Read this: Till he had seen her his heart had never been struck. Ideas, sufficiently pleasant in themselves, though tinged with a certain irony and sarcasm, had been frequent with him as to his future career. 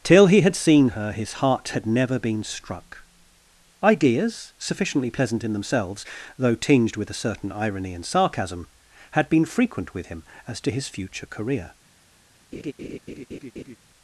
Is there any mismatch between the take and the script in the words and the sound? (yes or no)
yes